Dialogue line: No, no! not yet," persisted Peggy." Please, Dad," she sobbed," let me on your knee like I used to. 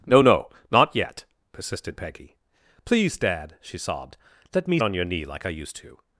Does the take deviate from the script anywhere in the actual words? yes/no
no